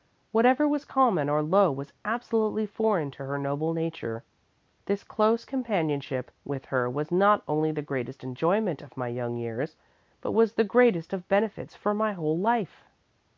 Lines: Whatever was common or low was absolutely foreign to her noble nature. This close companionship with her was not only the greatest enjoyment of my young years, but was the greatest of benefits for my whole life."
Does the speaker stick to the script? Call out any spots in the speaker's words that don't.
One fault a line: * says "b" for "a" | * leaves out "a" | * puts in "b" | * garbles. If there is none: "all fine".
all fine